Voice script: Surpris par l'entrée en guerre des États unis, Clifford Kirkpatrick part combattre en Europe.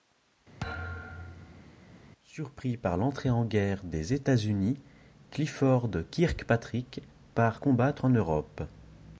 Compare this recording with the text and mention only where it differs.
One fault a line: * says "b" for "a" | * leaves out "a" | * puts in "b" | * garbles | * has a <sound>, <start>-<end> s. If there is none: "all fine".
* has a thud, 0.6-1.7 s